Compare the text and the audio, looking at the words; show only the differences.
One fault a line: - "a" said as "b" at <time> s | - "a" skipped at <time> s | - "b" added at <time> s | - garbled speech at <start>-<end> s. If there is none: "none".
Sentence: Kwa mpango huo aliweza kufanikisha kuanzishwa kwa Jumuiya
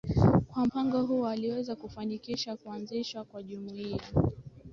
none